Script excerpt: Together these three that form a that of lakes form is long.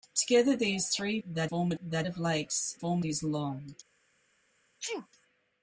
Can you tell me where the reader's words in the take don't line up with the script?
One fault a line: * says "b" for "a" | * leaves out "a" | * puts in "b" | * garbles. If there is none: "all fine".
all fine